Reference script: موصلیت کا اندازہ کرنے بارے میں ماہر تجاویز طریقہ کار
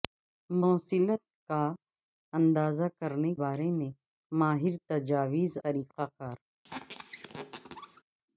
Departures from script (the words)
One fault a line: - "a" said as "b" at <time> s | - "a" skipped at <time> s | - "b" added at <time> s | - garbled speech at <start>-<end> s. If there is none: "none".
none